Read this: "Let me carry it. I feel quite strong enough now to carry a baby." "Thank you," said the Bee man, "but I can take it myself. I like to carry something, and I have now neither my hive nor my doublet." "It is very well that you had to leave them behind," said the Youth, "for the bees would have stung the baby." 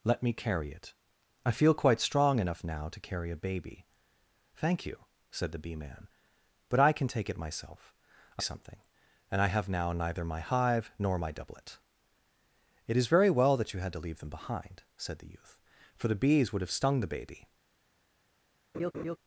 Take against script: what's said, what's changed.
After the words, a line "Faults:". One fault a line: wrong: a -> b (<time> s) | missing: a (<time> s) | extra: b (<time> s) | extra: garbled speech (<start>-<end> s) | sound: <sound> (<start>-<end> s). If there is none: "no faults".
"Let me carry it. I feel quite strong enough now to carry a baby." "Thank you," said the Bee man, "but I can take it myself. I something, and I have now neither my hive nor my doublet." "It is very well that you had to leave them behind," said the Youth, "for the bees would have stung the baby."
Faults:
missing: like to carry (8.4 s)
sound: laugh (18.7-19.2 s)